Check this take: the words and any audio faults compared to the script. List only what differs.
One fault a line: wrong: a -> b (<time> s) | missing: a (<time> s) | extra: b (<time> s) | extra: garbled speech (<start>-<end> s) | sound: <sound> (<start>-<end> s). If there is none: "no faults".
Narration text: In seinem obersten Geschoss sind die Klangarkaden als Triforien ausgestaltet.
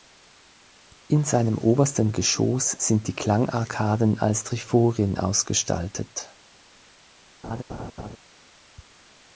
sound: laugh (7.4-8.2 s)